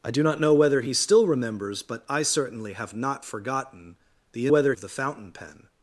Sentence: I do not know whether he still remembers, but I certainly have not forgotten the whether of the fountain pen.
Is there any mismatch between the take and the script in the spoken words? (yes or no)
no